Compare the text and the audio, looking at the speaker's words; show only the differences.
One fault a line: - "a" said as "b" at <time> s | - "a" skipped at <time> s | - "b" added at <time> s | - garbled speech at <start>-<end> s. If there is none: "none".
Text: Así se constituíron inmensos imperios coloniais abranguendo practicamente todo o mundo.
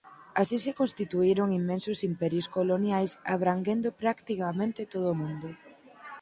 none